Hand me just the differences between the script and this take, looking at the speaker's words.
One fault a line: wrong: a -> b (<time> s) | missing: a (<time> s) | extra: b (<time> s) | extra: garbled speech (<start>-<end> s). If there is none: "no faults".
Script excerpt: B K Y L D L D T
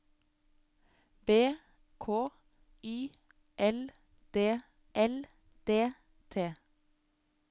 no faults